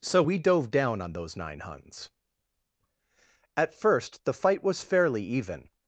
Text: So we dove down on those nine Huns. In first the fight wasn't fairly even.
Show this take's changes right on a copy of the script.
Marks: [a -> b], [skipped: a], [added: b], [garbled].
So we dove down on those nine Huns. [In -> At] first the fight [wasn't -> was] fairly even.